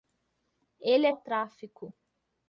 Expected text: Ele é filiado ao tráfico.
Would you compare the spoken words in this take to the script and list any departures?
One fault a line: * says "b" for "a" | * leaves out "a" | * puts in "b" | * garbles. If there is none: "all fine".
* leaves out "filiado"